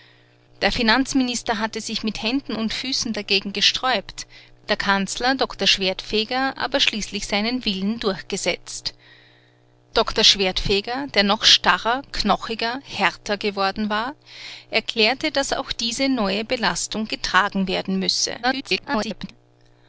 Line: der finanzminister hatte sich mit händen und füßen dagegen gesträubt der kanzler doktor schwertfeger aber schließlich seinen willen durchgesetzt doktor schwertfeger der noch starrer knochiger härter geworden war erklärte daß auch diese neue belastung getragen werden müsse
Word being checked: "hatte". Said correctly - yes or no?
yes